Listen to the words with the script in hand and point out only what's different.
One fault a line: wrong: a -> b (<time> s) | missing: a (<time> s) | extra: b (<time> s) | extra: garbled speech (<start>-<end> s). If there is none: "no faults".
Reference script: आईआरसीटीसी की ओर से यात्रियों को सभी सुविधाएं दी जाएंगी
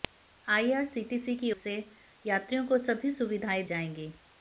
missing: ओर (1.5 s)
missing: दी (3.6 s)